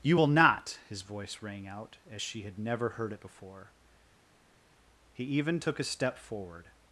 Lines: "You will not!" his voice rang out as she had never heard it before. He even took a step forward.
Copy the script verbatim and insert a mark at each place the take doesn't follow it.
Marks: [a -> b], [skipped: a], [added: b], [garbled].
"You will not!" his voice rang out as she had never heard it before. He even took a step forward.